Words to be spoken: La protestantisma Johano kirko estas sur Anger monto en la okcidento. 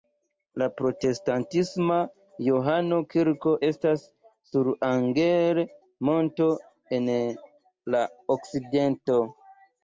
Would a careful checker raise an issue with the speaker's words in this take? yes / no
no